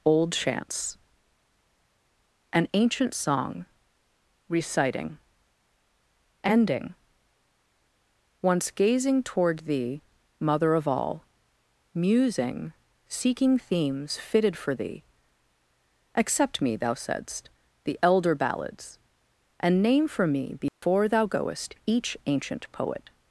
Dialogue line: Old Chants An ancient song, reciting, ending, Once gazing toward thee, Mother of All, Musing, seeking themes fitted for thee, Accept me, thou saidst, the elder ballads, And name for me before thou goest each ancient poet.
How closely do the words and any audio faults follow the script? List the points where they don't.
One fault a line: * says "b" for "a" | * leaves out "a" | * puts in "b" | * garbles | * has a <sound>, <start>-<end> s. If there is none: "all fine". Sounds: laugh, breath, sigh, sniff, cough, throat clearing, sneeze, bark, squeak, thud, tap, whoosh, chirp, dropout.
* has a dropout, 20.7-20.8 s